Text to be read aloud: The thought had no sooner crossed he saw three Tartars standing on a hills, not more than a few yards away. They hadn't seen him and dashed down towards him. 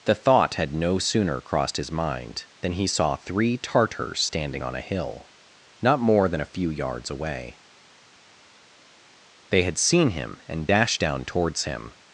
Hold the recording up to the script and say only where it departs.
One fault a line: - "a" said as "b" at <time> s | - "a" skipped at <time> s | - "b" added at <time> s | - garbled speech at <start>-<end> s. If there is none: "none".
- "his mind than" added at 1.8 s
- "hills" said as "hill" at 4.8 s
- "hadn't" said as "had" at 9.6 s